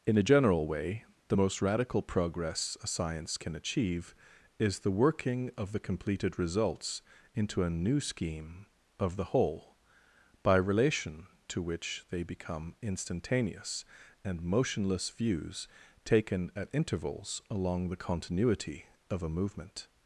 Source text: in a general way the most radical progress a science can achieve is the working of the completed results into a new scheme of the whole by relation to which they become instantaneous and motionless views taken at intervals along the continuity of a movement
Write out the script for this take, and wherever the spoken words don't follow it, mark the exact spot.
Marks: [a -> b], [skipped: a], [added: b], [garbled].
in a general way the most radical progress a science can achieve is the working of the completed results into a new scheme of the whole by relation to which they become instantaneous and motionless views taken at intervals along the continuity of a movement